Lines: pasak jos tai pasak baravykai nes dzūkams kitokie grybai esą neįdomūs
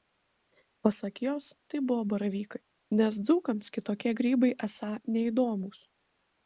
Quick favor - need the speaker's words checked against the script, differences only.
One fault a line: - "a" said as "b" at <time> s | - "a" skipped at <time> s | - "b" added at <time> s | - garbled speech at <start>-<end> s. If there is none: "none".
- "pasak" said as "buvo" at 1.9 s